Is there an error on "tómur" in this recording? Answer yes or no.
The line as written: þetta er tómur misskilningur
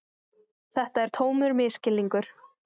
no